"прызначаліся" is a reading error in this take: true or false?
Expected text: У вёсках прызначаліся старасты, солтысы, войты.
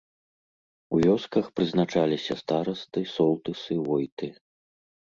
false